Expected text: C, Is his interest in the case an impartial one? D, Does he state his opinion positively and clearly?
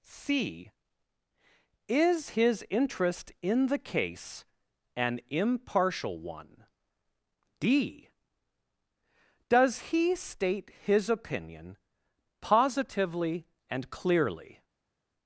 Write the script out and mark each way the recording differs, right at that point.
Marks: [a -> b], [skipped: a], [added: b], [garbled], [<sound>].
C, Is his interest in the case an impartial one? D, Does he state his opinion positively and clearly?